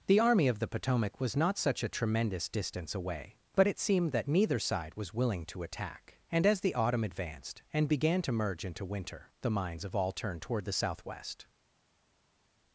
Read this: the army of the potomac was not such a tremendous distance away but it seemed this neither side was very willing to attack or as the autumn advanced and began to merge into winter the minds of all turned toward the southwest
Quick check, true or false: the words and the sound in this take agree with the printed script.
false